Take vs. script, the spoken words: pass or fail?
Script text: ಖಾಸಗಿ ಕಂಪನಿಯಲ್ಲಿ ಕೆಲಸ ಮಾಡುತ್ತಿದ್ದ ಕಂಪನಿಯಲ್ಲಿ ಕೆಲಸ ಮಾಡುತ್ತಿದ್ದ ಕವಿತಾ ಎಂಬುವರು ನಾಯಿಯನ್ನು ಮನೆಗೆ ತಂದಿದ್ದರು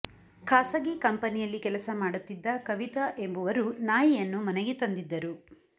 fail